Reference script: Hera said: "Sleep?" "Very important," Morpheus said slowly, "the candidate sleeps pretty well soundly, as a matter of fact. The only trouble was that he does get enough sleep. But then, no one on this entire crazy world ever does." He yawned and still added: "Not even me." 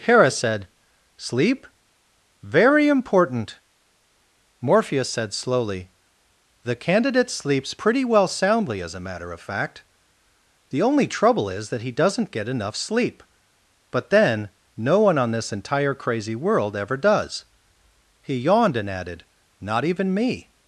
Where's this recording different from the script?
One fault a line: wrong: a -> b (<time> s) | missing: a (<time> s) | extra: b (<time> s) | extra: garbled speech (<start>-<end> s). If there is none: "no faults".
wrong: was -> is (11.5 s)
wrong: does -> doesn't (11.9 s)
missing: still (18.9 s)